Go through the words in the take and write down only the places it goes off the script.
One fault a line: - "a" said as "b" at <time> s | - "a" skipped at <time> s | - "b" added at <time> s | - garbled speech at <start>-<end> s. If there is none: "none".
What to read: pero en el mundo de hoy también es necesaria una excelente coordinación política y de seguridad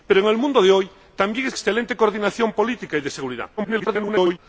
- "necesaria una" skipped at 1.6 s
- garbled speech at 3.6-4.4 s